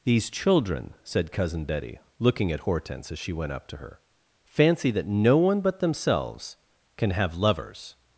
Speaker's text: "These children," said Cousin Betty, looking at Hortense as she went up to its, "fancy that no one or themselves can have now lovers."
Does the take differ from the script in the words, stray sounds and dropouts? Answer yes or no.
yes